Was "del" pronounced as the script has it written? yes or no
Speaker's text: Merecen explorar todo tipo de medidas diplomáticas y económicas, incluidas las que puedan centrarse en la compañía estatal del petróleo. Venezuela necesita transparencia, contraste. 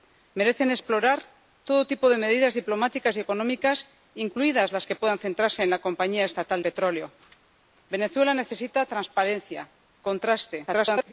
no